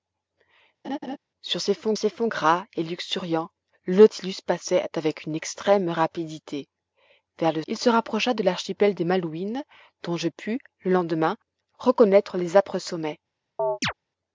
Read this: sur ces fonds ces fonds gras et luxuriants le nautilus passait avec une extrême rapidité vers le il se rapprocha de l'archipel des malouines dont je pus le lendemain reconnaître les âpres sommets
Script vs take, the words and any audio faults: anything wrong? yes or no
yes